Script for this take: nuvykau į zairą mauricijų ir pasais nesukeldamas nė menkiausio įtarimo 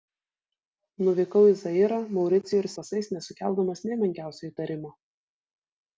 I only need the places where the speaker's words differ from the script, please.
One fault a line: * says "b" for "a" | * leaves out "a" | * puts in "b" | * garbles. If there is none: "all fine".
all fine